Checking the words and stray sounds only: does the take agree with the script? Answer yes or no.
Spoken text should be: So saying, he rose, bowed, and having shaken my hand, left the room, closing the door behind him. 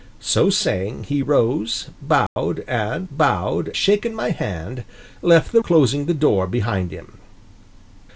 no